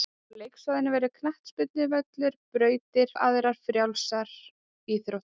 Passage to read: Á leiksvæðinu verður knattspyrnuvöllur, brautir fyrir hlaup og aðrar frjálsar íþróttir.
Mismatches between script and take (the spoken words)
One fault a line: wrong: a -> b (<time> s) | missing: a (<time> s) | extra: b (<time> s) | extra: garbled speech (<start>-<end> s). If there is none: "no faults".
missing: fyrir hlaup (3.1 s)